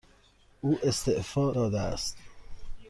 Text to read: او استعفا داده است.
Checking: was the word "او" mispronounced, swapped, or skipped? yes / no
no